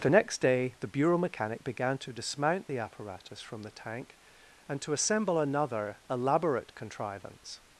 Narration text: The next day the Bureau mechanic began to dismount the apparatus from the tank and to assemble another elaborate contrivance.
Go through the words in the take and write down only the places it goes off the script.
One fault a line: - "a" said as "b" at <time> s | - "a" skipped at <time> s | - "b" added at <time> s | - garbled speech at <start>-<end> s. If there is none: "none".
none